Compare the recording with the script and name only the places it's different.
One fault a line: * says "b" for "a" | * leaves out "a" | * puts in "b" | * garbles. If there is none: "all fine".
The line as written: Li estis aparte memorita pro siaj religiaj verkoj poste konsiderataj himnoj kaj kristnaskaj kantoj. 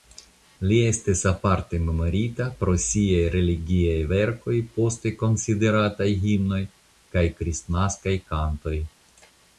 all fine